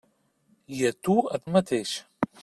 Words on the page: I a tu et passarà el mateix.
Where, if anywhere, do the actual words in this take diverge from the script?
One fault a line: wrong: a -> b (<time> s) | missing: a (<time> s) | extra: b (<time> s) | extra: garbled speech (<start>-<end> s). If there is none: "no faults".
missing: passarà (1.4 s)